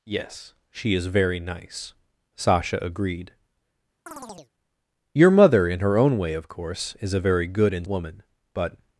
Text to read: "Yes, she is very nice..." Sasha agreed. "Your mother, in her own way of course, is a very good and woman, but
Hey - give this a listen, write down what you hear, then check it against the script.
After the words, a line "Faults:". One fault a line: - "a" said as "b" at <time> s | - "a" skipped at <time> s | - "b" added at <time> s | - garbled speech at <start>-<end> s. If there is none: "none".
"Yes, she is very nice..." Sasha agreed. "Your mother, in her own way of course, is a very good and woman, but
Faults:
none